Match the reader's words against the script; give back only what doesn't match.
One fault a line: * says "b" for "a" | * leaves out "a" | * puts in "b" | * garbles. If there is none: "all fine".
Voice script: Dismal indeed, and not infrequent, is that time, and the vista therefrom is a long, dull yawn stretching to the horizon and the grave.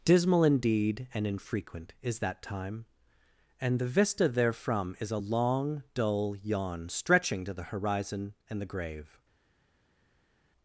* leaves out "not"